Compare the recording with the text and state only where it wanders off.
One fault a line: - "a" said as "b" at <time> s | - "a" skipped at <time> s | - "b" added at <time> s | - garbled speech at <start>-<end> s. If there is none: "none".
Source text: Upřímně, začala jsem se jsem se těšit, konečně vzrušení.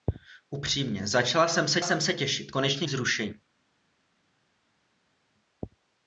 none